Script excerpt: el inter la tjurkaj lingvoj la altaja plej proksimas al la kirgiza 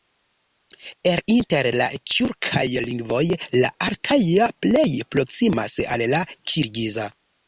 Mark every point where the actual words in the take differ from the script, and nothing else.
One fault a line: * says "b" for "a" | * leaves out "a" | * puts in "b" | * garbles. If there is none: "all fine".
all fine